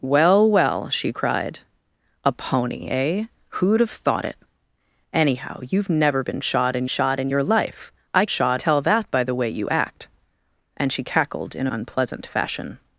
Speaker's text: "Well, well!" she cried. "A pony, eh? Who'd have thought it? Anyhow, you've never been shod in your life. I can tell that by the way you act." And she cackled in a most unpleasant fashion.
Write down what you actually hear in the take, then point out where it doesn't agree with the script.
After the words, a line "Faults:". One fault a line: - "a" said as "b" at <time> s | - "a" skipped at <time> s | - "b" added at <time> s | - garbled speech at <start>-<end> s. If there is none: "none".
"Well, well!" she cried. "A pony, eh? Who'd have thought it? Anyhow, you've never been shod in shod in your life. I shod tell that by the way you act." And she cackled in a unpleasant fashion.
Faults:
- "shod in" added at 6.9 s
- "can" said as "shod" at 8.3 s
- "most" skipped at 11.7 s